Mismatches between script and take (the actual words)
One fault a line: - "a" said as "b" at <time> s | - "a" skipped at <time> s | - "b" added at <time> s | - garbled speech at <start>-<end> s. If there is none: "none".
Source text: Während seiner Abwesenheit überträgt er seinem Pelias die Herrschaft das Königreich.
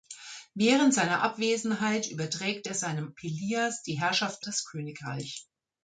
none